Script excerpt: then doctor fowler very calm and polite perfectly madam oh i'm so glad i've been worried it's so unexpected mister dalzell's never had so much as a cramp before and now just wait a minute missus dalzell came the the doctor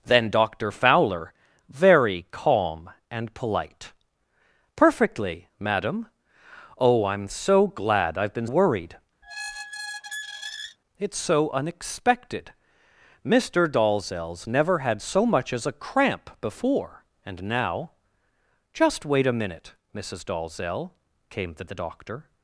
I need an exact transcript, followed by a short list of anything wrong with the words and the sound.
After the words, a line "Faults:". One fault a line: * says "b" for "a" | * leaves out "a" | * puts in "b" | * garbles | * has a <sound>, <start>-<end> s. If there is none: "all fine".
then doctor fowler very calm and polite perfectly madam oh i'm so glad i've been worried it's so unexpected mister dalzell's never had so much as a cramp before and now just wait a minute missus dalzell came the the doctor
Faults:
* has a squeak, 9.2-10.8 s